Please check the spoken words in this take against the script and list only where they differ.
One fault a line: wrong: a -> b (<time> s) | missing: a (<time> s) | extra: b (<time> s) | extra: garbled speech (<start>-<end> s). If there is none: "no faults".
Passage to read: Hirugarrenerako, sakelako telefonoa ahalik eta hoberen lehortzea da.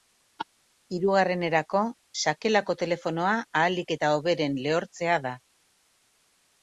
no faults